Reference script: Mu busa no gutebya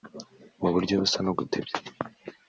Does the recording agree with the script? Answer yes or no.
no